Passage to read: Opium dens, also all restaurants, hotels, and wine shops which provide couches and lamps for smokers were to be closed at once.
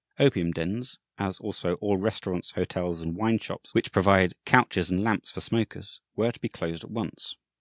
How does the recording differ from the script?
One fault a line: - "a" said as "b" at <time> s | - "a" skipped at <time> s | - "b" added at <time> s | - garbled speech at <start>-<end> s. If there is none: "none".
- "as" added at 1.2 s